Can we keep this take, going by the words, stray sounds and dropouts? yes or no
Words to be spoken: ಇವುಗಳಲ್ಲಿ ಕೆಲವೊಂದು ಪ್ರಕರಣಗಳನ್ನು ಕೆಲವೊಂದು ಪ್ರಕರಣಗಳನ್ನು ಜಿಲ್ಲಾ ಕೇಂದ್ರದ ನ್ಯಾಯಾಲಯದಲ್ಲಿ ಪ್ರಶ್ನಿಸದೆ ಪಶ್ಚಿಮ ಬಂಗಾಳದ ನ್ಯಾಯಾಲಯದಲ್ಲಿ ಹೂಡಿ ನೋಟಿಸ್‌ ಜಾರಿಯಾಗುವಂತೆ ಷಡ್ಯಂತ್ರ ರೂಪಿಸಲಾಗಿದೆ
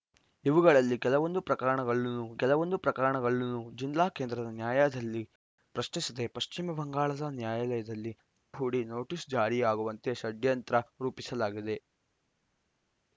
yes